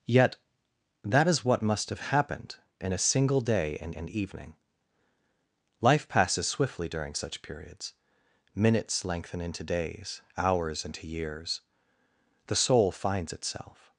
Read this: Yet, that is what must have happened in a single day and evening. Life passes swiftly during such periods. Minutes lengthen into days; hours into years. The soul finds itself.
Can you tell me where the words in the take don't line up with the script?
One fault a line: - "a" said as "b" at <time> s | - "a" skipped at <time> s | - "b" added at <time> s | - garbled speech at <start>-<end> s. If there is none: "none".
- "and" added at 4.0 s